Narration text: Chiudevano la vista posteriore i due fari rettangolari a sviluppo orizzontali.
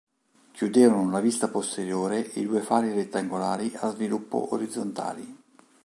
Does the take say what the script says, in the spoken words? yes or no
yes